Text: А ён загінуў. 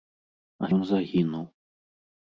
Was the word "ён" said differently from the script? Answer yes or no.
no